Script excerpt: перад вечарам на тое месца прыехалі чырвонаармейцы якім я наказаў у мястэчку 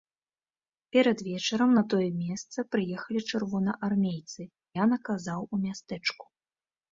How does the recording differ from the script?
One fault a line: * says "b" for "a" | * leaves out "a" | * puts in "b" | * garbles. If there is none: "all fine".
* leaves out "якім"